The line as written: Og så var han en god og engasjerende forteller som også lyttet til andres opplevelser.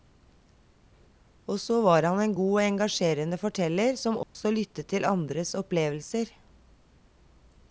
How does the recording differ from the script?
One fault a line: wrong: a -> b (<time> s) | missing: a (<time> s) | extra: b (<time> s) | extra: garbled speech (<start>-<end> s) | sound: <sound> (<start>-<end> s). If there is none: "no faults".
sound: dropout (4.2-4.3 s)